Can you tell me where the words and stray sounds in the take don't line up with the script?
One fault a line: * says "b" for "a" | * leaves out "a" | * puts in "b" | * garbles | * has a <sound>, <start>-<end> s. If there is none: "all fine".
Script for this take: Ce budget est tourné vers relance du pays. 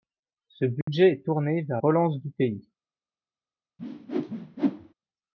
* has a dropout, 0.8-0.9 s
* has a whoosh, 3.8-4.9 s